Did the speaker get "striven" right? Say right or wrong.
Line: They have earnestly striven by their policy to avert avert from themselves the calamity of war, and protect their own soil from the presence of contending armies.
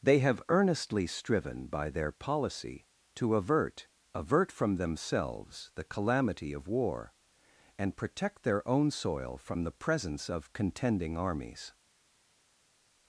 right